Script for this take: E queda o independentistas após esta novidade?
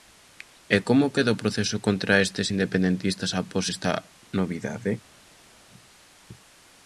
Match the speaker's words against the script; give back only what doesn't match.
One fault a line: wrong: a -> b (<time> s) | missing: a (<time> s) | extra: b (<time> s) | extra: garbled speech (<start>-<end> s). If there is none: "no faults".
extra: como (0.9 s)
extra: proceso contra estes (1.4 s)